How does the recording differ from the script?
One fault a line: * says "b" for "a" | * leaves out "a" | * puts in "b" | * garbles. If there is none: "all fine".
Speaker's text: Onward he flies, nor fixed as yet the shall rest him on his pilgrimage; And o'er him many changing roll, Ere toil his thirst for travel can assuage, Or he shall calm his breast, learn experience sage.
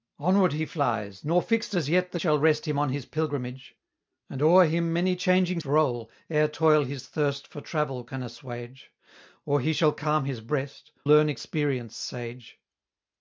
all fine